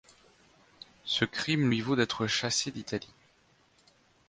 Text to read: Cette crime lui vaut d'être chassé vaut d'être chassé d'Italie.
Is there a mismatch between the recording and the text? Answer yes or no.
yes